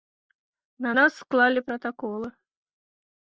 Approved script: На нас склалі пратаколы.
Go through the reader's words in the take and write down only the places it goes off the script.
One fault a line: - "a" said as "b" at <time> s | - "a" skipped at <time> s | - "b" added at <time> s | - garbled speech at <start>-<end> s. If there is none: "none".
none